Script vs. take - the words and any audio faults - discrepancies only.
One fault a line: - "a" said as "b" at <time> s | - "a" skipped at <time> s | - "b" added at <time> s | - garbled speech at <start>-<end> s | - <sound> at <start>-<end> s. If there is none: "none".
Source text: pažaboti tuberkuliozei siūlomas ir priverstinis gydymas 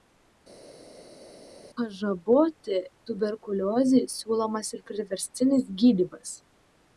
none